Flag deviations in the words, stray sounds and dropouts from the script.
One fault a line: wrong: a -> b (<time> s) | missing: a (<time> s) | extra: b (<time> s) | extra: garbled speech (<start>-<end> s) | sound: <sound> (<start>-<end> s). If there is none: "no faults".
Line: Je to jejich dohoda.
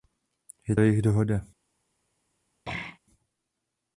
missing: to (0.8 s)
sound: throat clearing (2.6-3.0 s)